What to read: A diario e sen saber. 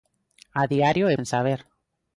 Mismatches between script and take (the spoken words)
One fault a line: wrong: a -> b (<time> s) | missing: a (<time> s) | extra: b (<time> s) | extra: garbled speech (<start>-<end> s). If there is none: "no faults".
no faults